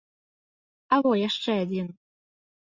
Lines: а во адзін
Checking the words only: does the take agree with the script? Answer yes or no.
no